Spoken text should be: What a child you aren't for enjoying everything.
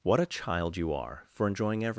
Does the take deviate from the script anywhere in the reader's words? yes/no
yes